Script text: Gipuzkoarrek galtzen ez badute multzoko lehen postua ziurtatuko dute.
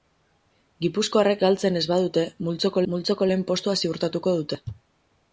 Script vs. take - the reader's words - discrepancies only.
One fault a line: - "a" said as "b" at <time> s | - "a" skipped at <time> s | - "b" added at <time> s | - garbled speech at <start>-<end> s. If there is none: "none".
- "multzoko" added at 2.9 s